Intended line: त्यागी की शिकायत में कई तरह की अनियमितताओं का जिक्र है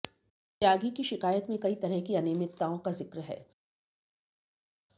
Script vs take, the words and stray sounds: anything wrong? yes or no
no